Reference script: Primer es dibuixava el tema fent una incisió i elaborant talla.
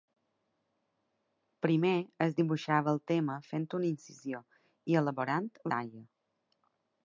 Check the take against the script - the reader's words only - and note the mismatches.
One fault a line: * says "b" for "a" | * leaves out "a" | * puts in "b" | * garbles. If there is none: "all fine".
all fine